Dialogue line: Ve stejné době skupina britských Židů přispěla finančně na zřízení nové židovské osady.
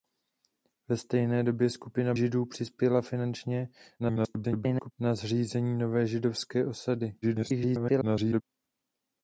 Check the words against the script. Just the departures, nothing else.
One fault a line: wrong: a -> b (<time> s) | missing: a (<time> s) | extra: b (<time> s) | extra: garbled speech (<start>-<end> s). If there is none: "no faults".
missing: britských (2.1 s)
extra: garbled speech (4.0-4.9 s)
extra: garbled speech (7.2-8.4 s)